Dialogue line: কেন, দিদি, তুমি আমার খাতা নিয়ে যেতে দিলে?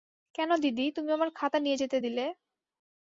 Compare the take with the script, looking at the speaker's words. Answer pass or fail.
pass